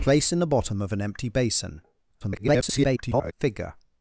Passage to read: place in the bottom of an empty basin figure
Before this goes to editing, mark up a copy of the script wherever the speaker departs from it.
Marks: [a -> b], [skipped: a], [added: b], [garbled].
place in the bottom of an empty basin [garbled] figure